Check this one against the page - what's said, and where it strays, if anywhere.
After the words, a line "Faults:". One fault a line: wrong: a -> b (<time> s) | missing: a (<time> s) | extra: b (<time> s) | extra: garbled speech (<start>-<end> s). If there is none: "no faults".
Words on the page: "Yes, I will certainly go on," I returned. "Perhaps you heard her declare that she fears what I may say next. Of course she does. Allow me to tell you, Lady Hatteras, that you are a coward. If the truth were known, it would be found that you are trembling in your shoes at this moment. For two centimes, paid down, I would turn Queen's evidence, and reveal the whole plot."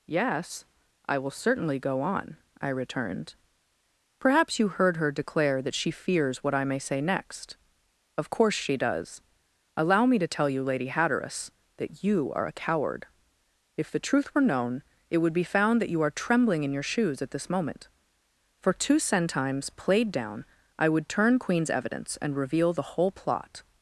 "Yes, I will certainly go on," I returned. "Perhaps you heard her declare that she fears what I may say next. Of course she does. Allow me to tell you, Lady Hatteras, that you are a coward. If the truth were known, it would be found that you are trembling in your shoes at this moment. For two centimes, played down, I would turn Queen's evidence, and reveal the whole plot."
Faults:
wrong: paid -> played (19.7 s)